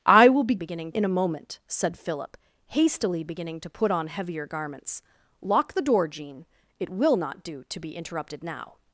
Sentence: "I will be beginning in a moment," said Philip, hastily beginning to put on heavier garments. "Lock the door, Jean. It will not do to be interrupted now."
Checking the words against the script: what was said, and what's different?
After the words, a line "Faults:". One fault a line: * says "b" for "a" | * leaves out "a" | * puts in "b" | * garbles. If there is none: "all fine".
"I will be beginning in a moment," said Philip, hastily beginning to put on heavier garments. "Lock the door, Jean. It will not do to be interrupted now."
Faults:
all fine